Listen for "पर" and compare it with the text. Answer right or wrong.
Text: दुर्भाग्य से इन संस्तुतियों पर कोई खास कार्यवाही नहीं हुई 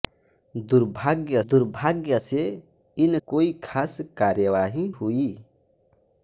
wrong